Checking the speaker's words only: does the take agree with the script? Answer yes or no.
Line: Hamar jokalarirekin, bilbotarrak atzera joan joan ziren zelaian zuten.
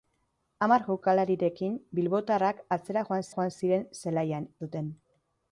yes